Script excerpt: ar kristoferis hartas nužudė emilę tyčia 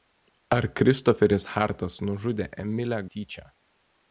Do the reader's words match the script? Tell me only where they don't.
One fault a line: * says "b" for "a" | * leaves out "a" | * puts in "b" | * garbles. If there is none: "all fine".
all fine